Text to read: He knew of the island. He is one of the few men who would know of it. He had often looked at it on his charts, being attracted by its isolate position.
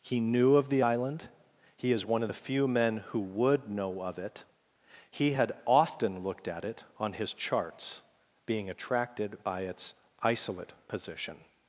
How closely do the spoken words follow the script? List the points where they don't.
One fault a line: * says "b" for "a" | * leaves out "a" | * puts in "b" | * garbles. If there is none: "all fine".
all fine